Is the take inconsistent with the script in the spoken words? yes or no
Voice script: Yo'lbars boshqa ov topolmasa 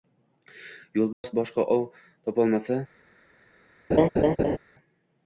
no